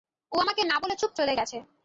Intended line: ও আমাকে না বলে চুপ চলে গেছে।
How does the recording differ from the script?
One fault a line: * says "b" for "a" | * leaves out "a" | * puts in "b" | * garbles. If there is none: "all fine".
all fine